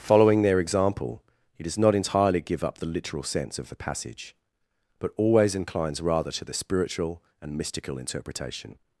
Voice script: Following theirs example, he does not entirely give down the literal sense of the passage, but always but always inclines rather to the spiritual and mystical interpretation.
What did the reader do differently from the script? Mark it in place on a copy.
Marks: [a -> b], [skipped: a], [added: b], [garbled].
Following [theirs -> their] example, he does not entirely give [down -> up] the literal sense of the passage, but always [skipped: but always] inclines rather to the spiritual and mystical interpretation.